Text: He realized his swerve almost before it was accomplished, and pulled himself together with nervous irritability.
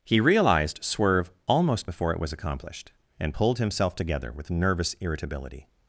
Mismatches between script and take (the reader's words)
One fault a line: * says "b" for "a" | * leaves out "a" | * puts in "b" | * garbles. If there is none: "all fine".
* leaves out "his"